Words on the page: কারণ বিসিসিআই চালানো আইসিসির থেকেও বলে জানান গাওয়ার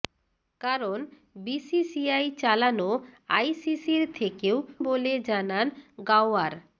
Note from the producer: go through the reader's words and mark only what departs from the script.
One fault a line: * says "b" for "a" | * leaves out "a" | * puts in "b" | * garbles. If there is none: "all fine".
all fine